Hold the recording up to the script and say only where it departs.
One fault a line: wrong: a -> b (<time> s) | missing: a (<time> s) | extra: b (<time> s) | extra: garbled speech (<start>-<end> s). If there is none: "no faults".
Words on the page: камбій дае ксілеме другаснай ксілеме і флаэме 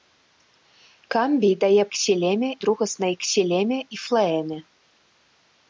no faults